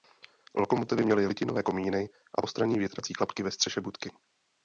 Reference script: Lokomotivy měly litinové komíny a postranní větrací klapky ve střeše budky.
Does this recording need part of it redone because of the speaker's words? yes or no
no